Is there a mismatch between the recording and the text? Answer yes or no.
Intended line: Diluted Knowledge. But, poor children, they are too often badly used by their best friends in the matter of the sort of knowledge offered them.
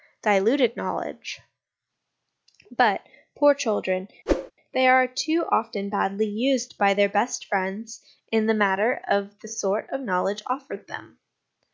no